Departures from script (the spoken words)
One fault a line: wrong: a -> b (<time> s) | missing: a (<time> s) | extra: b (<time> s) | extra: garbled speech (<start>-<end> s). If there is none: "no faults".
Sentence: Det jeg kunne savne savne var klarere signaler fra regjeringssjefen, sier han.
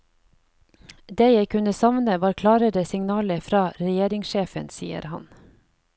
missing: savne (2.1 s)